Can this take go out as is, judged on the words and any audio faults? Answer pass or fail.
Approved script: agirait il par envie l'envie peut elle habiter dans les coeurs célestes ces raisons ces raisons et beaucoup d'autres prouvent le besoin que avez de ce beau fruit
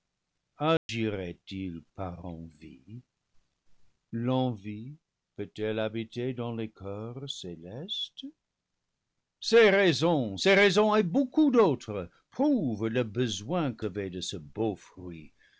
fail